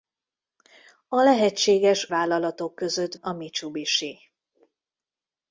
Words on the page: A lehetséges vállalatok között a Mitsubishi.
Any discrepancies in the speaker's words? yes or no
no